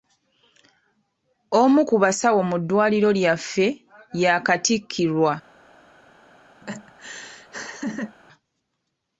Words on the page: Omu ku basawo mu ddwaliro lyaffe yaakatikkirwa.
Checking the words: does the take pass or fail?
pass